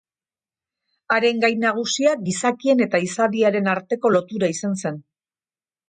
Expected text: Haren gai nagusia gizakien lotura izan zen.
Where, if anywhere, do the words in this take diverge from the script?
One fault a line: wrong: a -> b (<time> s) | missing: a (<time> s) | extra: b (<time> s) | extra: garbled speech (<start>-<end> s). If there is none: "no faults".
extra: eta izadiaren arteko (2.9 s)